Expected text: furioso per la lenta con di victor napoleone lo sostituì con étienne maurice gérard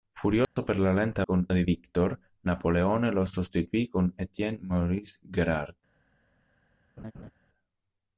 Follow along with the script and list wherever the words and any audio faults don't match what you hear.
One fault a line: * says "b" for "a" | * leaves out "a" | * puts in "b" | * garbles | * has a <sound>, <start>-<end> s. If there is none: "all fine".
* has a dropout, 0.4-0.6 s
* has a laugh, 7.0-7.3 s